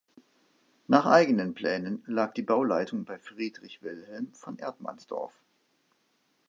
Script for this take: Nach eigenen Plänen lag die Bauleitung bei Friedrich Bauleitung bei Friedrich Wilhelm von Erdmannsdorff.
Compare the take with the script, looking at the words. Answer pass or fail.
fail